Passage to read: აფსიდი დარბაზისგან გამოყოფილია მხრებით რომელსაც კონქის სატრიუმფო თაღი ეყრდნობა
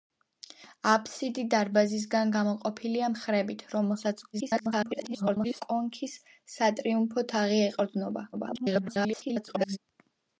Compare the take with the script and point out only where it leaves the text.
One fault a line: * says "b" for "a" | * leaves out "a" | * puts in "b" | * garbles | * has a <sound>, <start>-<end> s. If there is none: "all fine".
* garbles
* garbles